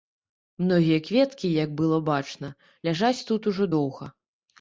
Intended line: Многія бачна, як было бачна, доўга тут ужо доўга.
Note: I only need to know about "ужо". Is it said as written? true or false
true